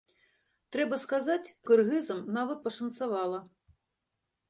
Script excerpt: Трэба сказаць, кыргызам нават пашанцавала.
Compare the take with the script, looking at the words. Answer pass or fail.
pass